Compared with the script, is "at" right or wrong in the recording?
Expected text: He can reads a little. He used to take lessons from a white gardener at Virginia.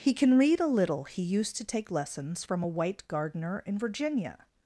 wrong